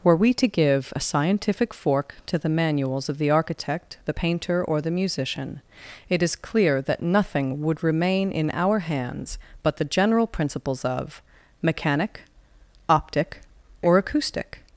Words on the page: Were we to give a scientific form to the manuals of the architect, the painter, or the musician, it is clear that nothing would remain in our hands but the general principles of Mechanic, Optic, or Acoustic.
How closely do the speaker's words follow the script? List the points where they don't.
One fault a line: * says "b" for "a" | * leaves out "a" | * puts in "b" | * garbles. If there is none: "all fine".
* says "fork" for "form"